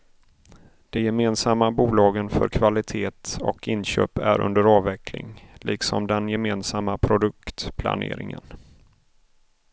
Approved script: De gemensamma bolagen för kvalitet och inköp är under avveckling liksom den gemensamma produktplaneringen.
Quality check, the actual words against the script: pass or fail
pass